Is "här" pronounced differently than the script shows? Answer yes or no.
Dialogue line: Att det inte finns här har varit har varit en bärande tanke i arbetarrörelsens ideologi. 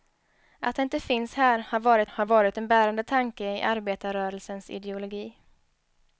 no